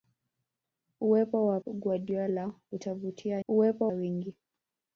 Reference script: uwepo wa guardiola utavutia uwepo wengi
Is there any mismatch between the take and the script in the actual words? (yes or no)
no